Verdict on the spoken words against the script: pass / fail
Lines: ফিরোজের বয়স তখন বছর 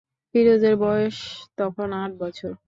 fail